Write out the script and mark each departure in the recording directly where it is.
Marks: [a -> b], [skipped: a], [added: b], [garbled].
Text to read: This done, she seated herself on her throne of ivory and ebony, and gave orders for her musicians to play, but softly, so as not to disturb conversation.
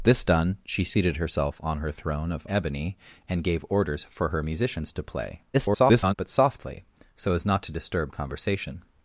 This done, she seated herself on her throne of [skipped: ivory and] ebony, and gave orders for her musicians to play, [garbled] but softly, so as not to disturb conversation.